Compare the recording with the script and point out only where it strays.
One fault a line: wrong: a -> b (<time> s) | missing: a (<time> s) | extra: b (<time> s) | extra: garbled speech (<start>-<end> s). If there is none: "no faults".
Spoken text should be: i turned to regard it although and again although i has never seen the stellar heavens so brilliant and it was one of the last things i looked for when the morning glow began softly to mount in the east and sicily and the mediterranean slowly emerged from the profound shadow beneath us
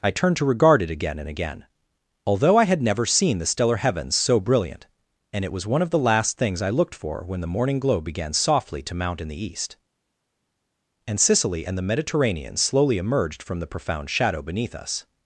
wrong: although -> again (0.9 s)
wrong: has -> had (2.6 s)